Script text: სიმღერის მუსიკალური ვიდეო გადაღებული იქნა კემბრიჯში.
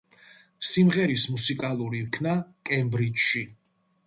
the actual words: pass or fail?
fail